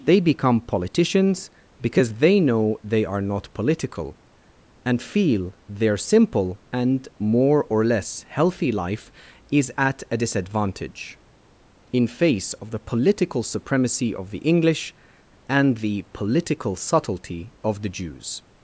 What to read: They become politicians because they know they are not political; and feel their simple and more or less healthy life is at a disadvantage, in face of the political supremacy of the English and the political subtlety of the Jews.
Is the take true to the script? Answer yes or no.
yes